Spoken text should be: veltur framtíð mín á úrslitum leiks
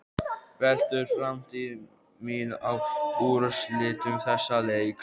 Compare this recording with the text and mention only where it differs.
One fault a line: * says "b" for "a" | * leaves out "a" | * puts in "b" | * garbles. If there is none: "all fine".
* puts in "þessa"